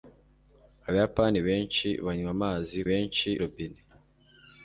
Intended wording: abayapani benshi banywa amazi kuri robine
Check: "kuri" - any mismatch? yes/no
yes